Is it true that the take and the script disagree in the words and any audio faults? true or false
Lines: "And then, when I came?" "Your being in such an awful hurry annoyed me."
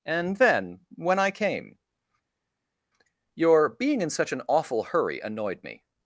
false